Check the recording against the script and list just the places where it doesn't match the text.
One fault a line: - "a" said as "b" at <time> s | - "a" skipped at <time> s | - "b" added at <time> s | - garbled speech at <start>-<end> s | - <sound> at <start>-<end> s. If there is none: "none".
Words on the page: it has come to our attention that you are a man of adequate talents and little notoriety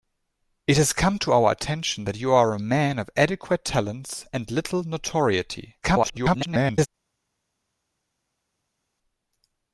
- garbled speech at 5.8-6.9 s